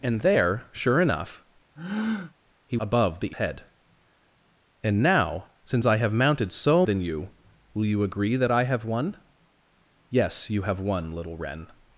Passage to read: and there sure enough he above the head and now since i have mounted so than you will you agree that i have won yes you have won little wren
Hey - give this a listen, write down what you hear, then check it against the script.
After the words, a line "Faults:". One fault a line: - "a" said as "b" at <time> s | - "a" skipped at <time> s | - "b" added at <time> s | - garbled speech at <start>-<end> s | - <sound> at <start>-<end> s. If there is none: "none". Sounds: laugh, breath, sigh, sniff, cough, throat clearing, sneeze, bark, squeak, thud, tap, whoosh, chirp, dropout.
and there sure enough he above the head and now since i have mounted so than you will you agree that i have won yes you have won little wren
Faults:
- breath at 1.8-2.3 s